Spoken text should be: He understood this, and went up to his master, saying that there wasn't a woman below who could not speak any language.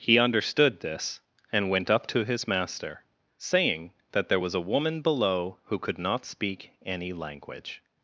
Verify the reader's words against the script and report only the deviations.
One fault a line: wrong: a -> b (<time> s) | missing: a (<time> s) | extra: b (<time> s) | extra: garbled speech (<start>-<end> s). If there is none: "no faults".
wrong: wasn't -> was (4.4 s)